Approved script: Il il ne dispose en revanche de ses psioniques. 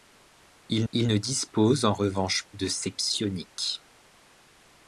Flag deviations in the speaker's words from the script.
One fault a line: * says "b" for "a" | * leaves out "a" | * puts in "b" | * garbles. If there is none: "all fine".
all fine